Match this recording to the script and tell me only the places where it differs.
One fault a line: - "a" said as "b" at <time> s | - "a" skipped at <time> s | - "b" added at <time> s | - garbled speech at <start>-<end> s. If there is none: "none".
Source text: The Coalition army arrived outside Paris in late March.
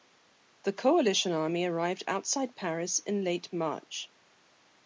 none